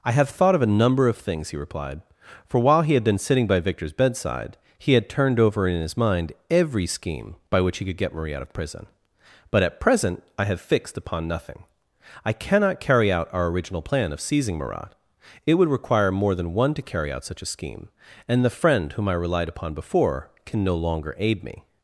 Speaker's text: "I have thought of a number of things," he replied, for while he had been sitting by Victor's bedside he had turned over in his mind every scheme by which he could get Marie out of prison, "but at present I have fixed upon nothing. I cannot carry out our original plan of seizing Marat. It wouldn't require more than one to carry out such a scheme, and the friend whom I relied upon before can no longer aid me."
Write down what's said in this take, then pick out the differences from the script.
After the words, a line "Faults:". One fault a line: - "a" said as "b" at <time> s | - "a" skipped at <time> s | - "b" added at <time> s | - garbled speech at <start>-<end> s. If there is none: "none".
"I have thought of a number of things," he replied, for while he had been sitting by Victor's bedside he had turned over in his mind every scheme by which he could get Marie out of prison, "but at present I have fixed upon nothing. I cannot carry out our original plan of seizing Marat. It would require more than one to carry out such a scheme, and the friend whom I relied upon before can no longer aid me."
Faults:
- "wouldn't" said as "would" at 15.6 s